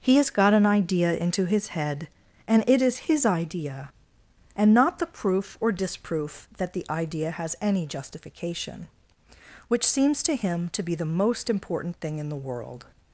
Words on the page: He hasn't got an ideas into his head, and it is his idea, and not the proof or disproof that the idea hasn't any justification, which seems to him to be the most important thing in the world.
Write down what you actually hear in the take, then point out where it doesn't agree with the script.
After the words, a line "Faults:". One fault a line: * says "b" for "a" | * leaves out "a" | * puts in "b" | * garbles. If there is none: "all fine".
He has got an idea into his head, and it is his idea, and not the proof or disproof that the idea has any justification, which seems to him to be the most important thing in the world.
Faults:
* says "has" for "hasn't"
* says "idea" for "ideas"
* says "has" for "hasn't"